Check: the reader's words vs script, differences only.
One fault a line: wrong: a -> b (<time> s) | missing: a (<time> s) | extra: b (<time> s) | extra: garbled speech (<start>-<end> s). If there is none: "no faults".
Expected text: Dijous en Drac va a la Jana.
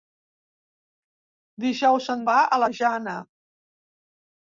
missing: Drac (2.2 s)